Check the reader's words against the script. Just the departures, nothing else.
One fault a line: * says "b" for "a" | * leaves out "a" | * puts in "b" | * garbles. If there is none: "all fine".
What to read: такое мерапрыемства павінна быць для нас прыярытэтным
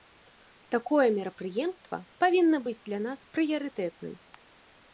all fine